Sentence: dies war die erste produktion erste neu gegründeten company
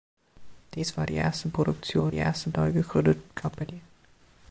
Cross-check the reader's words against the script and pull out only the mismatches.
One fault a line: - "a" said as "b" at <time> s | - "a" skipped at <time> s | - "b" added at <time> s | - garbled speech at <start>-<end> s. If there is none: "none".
none